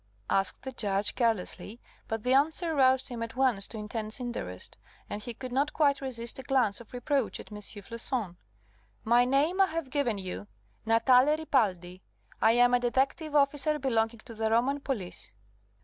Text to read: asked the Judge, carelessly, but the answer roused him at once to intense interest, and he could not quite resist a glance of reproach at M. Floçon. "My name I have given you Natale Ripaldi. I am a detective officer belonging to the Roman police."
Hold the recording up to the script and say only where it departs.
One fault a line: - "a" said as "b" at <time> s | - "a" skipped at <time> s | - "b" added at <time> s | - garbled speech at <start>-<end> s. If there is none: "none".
none